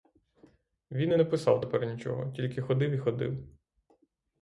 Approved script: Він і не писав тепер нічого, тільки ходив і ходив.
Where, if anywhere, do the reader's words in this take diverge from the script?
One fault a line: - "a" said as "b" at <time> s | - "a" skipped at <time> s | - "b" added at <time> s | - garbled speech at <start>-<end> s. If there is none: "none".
none